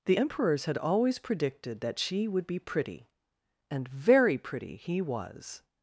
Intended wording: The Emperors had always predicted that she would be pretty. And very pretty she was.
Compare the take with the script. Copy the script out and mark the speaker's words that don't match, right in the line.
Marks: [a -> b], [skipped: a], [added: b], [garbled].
The Emperors had always predicted that she would be pretty. And very pretty [she -> he] was.